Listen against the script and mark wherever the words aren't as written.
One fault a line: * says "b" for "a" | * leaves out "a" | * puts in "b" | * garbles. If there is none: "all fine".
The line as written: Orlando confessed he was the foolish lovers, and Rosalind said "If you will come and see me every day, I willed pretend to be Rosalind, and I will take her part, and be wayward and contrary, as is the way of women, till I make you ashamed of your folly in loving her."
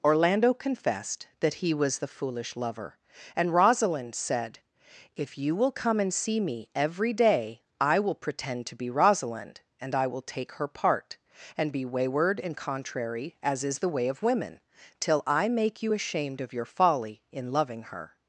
* puts in "that"
* says "lover" for "lovers"
* says "will" for "willed"